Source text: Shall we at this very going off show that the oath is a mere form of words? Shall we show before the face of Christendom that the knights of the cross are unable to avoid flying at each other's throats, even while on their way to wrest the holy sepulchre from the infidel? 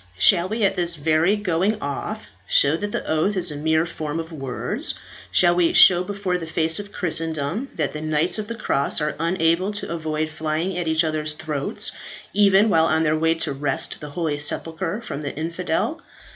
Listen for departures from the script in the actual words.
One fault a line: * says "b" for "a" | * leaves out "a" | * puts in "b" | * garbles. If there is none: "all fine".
all fine